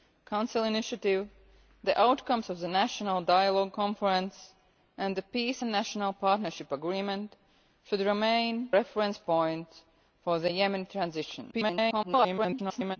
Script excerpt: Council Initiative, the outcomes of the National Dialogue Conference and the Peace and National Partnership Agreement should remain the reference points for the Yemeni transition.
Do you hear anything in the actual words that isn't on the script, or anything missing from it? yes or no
yes